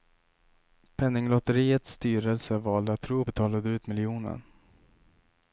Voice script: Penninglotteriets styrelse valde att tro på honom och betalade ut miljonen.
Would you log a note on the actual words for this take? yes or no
yes